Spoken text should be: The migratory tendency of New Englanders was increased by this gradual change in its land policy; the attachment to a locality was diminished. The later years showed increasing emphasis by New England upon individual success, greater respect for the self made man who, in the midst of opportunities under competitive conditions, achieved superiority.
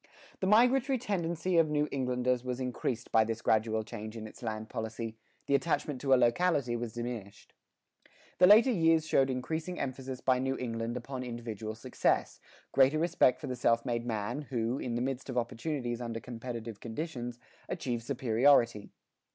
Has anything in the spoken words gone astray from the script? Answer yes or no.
no